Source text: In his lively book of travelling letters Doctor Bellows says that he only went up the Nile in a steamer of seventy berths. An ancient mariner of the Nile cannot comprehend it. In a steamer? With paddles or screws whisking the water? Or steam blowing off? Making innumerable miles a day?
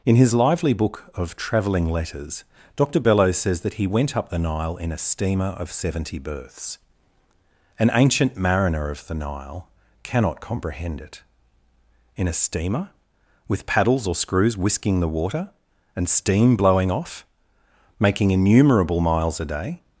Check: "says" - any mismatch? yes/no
no